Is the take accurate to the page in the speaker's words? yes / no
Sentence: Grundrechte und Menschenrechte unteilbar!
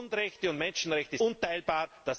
yes